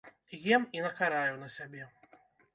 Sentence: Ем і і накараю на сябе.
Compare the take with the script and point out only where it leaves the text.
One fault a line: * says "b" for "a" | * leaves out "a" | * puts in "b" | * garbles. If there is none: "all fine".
* leaves out "і"